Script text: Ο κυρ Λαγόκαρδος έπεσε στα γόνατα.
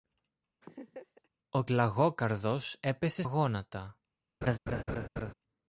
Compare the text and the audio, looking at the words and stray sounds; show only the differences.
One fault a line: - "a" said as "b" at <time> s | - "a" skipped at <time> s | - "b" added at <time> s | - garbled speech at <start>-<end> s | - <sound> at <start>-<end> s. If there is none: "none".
- laugh at 0.6-1.3 s
- "κυρ" skipped at 1.6 s
- "στα" skipped at 3.2 s
- laugh at 4.4-5.3 s